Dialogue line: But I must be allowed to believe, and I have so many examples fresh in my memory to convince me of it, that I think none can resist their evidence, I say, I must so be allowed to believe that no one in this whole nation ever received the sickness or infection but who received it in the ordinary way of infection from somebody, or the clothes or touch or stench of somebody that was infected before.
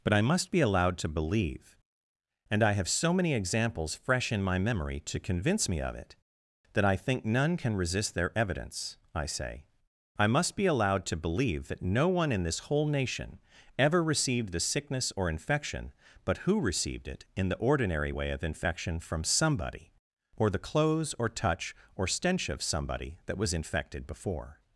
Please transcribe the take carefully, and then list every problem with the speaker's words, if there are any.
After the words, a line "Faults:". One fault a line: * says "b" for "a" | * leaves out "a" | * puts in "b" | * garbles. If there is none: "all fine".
But I must be allowed to believe, and I have so many examples fresh in my memory to convince me of it, that I think none can resist their evidence, I say, I must be allowed to believe that no one in this whole nation ever received the sickness or infection but who received it in the ordinary way of infection from somebody, or the clothes or touch or stench of somebody that was infected before.
Faults:
* leaves out "so"